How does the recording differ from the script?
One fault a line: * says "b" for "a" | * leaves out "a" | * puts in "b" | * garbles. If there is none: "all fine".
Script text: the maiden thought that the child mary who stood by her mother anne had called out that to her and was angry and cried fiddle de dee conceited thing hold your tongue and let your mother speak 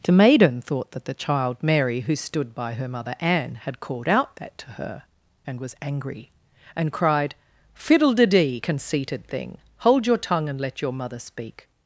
all fine